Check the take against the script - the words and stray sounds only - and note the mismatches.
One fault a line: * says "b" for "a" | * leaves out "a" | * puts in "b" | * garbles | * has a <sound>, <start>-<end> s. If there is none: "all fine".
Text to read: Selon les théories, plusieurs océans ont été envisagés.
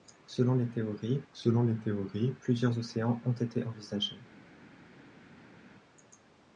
* puts in "selon les théories"